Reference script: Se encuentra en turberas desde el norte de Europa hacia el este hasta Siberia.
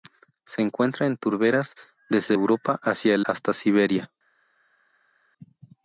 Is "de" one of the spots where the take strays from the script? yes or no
yes